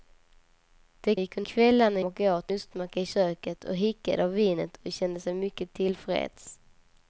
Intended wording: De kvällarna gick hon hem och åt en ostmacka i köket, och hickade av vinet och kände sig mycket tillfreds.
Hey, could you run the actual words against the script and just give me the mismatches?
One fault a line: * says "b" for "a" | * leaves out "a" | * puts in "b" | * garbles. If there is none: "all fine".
* leaves out "kvällarna"
* says "kvällarna" for "hem"
* leaves out "en"